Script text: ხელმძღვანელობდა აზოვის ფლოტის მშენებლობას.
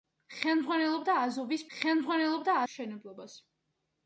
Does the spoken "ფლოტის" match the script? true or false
false